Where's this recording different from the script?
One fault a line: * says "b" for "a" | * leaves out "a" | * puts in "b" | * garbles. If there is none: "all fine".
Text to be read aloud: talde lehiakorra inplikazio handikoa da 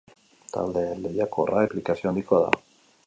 all fine